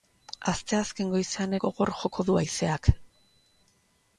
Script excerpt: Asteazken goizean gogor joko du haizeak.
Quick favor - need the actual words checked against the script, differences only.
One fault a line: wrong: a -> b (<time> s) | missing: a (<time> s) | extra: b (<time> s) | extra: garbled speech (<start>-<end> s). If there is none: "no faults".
no faults